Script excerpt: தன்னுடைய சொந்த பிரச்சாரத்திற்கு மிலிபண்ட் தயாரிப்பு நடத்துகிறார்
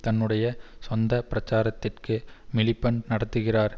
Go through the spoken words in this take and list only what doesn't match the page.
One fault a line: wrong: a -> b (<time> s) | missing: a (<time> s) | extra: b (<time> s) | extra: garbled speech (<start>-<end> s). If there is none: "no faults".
missing: தயாரிப்பு (3.0 s)